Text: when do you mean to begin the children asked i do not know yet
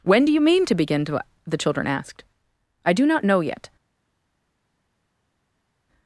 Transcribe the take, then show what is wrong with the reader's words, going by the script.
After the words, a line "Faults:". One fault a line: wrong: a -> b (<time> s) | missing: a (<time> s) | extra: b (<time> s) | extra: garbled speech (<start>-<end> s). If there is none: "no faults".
when do you mean to begin to the children asked i do not know yet
Faults:
extra: to (1.1 s)